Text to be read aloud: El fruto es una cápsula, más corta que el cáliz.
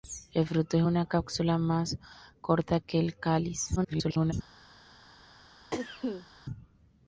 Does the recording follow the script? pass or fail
fail